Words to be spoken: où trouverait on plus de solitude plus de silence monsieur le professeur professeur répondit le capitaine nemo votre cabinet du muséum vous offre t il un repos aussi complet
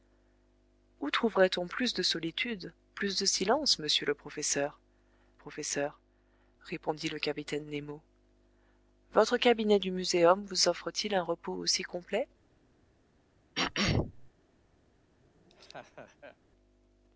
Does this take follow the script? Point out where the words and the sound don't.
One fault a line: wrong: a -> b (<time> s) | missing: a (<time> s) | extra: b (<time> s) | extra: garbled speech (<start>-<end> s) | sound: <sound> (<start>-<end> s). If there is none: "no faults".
sound: throat clearing (13.6-14.3 s)
sound: laugh (15.2-16.4 s)